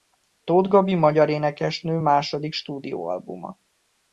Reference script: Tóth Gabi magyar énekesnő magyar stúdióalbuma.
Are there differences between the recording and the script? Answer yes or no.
yes